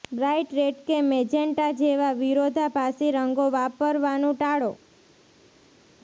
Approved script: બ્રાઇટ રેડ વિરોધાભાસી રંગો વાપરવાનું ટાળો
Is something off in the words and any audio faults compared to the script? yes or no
yes